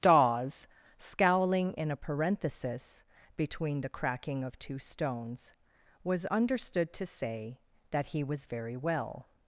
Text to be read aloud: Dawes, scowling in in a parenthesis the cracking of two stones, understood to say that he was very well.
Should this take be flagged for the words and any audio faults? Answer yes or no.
yes